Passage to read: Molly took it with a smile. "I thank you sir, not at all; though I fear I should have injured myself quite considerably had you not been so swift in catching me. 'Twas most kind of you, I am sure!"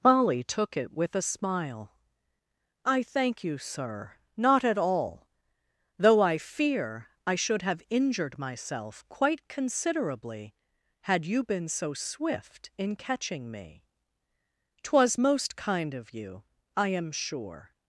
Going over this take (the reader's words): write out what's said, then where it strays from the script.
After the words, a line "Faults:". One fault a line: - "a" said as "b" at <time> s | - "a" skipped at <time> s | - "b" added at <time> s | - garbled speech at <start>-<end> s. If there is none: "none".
Molly took it with a smile. "I thank you sir, not at all; though I fear I should have injured myself quite considerably had you been so swift in catching me. 'Twas most kind of you, I am sure!"
Faults:
- "not" skipped at 11.4 s